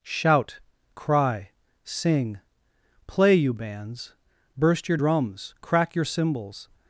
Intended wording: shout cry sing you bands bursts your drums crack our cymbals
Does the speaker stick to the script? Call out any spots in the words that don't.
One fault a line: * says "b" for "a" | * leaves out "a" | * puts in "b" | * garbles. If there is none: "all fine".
* puts in "play"
* says "burst" for "bursts"
* says "your" for "our"